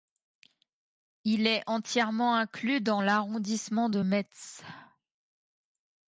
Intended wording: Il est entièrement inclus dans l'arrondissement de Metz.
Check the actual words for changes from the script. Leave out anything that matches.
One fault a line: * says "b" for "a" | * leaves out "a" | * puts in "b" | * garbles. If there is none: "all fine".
all fine